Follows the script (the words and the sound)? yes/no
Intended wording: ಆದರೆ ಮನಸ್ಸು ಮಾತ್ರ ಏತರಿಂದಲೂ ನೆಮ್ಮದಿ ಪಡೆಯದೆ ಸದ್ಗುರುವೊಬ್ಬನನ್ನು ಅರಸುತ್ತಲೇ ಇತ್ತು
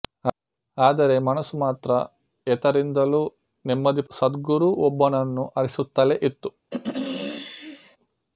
no